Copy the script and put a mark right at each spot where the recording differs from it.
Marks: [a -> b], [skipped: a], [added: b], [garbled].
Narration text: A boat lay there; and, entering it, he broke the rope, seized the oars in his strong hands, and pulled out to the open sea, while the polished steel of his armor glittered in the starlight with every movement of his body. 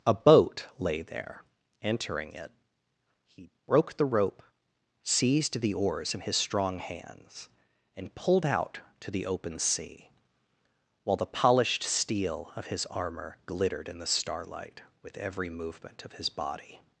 A boat lay there; [skipped: and,] entering it, he broke the rope, seized the oars in his strong hands, and pulled out to the open sea, while the polished steel of his armor glittered in the starlight with every movement of his body.